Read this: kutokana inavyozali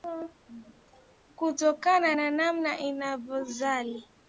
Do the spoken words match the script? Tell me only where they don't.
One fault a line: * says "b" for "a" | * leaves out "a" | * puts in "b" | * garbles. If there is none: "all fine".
* puts in "na namna"